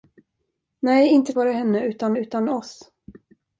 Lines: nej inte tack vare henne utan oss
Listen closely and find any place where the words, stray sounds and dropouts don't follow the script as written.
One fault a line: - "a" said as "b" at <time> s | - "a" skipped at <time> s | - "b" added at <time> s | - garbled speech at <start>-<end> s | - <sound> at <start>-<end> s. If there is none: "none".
- "tack" skipped at 1.3 s
- "utan" added at 2.2 s